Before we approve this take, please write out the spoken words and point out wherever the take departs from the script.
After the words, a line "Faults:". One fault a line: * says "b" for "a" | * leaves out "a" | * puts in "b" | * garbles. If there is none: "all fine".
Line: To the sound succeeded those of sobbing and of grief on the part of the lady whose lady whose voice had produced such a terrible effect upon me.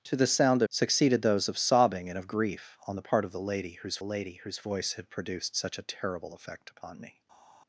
To the sound succeeded those of sobbing and of grief on the part of the lady whose lady whose voice had produced such a terrible effect upon me.
Faults:
all fine